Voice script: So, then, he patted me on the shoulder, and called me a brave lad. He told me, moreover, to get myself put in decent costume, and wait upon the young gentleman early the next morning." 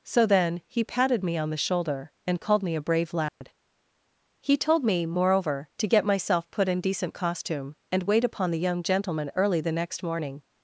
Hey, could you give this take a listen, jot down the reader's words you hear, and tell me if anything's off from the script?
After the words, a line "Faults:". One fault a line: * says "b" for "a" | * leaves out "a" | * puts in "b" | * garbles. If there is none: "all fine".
So, then, he patted me on the shoulder, and called me a brave lad. He told me, moreover, to get myself put in decent costume, and wait upon the young gentleman early the next morning."
Faults:
all fine